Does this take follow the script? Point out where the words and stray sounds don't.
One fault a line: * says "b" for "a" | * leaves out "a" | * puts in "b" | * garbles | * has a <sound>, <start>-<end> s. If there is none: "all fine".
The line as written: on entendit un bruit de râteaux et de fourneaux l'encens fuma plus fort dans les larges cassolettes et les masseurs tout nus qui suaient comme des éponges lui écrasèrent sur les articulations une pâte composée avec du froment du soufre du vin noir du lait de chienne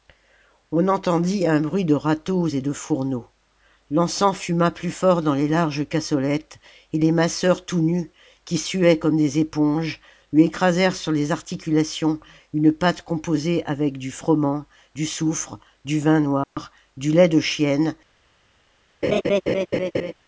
* has a dropout, 16.4-16.6 s
* has a laugh, 19.0-20.1 s